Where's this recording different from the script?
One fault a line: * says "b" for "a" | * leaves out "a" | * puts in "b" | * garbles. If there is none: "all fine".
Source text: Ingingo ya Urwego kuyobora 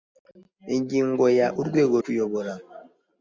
all fine